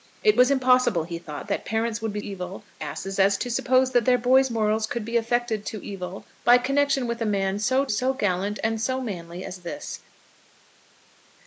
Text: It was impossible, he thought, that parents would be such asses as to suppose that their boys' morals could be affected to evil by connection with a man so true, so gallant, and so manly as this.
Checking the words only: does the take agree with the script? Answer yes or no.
no